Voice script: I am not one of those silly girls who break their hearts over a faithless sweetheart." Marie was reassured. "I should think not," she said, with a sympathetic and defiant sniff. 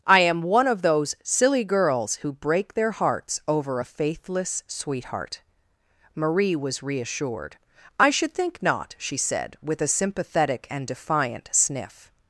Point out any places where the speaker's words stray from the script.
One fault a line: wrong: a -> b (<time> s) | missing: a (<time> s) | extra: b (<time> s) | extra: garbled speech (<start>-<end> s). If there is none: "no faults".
missing: not (0.4 s)